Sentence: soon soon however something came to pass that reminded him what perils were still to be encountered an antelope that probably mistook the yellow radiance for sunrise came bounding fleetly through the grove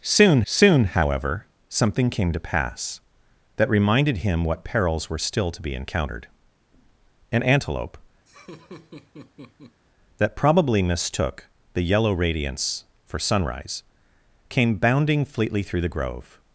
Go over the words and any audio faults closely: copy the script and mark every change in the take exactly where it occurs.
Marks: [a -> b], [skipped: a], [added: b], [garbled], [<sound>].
soon soon however something came to pass that reminded him what perils were still to be encountered an antelope [laugh] that probably mistook the yellow radiance for sunrise came bounding fleetly through the grove